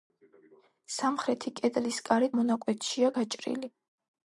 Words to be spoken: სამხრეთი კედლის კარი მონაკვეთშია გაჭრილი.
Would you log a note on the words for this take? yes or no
no